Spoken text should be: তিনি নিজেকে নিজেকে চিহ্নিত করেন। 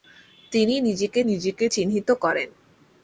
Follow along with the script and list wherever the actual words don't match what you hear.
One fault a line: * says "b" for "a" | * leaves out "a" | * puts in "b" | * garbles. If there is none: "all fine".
all fine